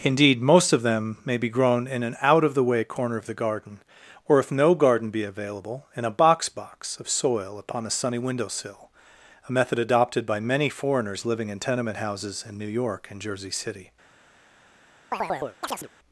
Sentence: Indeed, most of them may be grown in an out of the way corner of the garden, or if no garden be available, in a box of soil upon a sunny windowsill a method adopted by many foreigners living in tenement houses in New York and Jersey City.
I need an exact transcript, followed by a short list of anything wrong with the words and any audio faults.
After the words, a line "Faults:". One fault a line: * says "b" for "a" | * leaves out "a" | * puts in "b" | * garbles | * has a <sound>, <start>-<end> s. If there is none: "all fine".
Indeed, most of them may be grown in an out of the way corner of the garden, or if no garden be available, in a box box of soil upon a sunny windowsill a method adopted by many foreigners living in tenement houses in New York and Jersey City.
Faults:
* puts in "box"
* has a chirp, 15.1-15.9 s